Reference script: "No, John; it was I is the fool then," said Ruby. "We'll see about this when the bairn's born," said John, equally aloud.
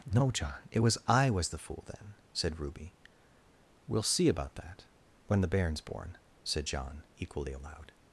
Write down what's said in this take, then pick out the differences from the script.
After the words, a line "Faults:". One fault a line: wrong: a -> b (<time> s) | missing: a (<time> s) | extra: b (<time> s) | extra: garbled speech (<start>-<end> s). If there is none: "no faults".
"No, John; it was I was the fool then," said Ruby. "We'll see about that when the bairn's born," said John, equally aloud.
Faults:
wrong: is -> was (1.3 s)
wrong: this -> that (4.5 s)